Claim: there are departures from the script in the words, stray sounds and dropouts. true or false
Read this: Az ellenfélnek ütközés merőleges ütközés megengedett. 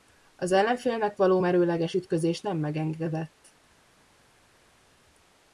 true